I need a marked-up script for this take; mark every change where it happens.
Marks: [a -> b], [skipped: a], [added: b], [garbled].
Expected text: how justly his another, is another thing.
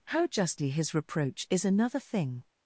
how justly his [another, -> reproach] is another thing.